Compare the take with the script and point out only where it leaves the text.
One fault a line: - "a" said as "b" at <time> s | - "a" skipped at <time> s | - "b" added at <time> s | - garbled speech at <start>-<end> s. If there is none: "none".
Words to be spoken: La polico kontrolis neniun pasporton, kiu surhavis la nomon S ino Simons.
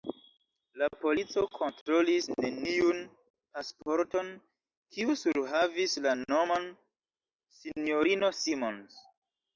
none